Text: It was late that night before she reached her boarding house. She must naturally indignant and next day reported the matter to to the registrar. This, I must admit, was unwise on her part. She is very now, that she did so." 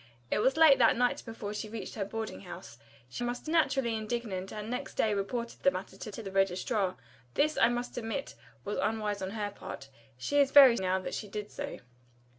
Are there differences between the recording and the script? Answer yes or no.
no